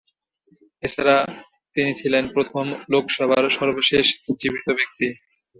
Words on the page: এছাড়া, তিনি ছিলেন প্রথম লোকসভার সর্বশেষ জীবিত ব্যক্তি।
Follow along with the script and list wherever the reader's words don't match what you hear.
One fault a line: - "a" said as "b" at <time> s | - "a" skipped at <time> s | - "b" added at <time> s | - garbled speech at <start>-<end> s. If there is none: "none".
none